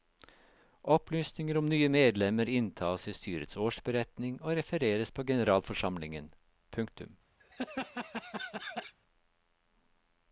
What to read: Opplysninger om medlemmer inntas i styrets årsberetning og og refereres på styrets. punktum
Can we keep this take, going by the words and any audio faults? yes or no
no